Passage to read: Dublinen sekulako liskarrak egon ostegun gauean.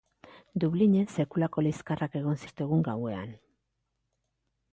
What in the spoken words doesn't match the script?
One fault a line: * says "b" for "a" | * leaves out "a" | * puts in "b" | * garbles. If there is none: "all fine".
all fine